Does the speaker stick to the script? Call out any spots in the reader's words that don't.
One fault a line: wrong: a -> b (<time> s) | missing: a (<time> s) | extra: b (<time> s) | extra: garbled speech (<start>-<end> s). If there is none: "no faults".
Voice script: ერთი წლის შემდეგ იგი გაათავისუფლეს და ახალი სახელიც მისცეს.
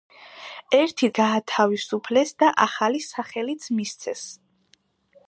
missing: წლის შემდეგ იგი (1.1 s)